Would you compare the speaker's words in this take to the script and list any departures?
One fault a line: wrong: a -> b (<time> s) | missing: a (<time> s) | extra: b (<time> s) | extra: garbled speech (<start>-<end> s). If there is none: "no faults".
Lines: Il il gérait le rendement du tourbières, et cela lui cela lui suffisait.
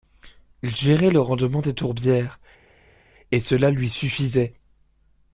missing: il (0.8 s)
wrong: du -> des (1.6 s)
missing: cela lui (3.9 s)